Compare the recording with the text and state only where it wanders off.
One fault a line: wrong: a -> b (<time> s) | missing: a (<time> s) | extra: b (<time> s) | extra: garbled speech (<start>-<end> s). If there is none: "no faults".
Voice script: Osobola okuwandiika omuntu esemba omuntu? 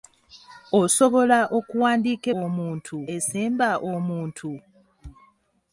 no faults